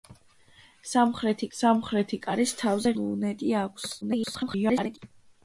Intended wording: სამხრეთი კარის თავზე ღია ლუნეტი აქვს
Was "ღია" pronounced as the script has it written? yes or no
no